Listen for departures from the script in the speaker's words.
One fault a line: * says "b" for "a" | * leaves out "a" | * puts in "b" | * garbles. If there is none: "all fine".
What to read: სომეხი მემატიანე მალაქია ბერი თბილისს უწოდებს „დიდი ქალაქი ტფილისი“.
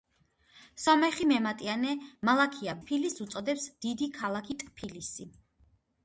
* leaves out "ბერი"